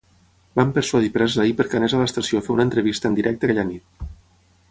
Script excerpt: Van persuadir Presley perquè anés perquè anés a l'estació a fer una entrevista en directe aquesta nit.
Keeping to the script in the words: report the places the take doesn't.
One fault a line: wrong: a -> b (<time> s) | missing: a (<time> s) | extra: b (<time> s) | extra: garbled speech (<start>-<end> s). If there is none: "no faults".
missing: perquè anés (1.9 s)
wrong: aquesta -> aquella (3.5 s)